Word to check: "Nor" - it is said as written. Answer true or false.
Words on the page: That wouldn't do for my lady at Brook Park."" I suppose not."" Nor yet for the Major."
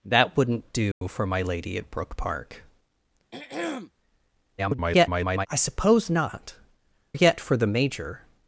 false